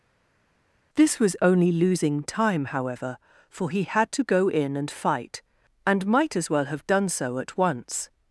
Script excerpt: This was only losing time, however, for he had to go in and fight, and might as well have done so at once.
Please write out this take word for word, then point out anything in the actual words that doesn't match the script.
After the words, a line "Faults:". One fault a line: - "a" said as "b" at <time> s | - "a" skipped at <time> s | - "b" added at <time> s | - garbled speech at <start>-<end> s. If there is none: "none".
This was only losing time, however, for he had to go in and fight, and might as well have done so at once.
Faults:
none